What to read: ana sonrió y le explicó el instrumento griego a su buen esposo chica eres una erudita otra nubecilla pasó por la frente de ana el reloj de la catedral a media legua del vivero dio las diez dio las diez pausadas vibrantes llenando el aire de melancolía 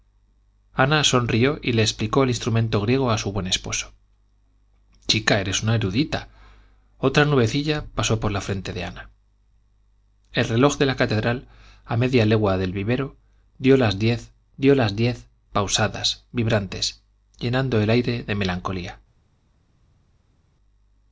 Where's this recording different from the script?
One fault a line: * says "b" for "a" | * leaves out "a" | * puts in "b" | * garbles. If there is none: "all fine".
all fine